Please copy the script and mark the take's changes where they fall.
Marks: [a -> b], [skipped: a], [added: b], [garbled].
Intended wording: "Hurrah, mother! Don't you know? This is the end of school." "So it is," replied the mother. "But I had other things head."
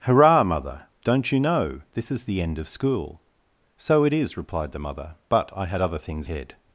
"Hurrah, mother! Don't you know? This is the end of school." "So it is," replied the mother. "But I had other things head."